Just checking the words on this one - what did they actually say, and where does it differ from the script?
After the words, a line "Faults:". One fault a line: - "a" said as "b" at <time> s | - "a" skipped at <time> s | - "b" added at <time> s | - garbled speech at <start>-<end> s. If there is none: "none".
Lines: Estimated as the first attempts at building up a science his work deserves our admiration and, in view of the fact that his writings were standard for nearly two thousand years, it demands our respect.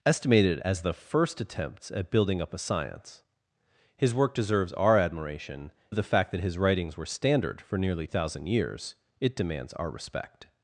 Estimated as the first attempts at building up a science his work deserves our admiration of the fact that his writings were standard for nearly thousand years, it demands our respect.
Faults:
- "and in view" skipped at 5.7 s
- "two" skipped at 8.1 s